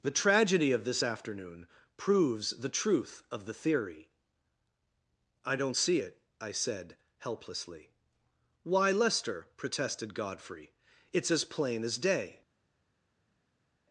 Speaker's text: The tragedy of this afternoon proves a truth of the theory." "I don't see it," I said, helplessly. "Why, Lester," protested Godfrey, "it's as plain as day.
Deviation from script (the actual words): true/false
true